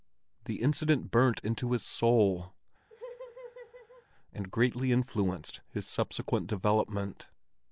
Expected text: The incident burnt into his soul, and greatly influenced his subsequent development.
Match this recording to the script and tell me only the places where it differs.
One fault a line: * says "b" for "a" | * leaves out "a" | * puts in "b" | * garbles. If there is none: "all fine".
all fine